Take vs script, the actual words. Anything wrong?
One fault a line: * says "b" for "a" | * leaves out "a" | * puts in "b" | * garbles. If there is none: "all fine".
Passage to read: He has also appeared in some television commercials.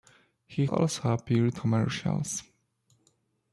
* leaves out "has"
* leaves out "in some television"